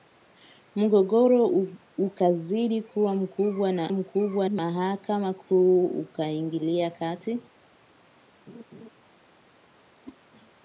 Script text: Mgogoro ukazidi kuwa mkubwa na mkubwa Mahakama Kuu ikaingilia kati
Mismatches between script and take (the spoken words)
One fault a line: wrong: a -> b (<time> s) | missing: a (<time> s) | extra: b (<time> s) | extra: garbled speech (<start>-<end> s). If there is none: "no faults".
no faults